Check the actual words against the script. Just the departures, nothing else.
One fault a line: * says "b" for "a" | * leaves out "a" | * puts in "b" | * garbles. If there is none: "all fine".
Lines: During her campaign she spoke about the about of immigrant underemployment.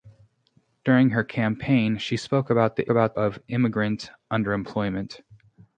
all fine